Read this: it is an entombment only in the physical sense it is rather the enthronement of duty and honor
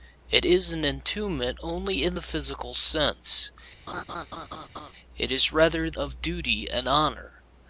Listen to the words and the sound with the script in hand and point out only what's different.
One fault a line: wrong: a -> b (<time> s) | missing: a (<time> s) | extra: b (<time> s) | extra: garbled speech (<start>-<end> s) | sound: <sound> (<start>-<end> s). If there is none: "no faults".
sound: laugh (3.9-4.9 s)
missing: the enthronement (5.9 s)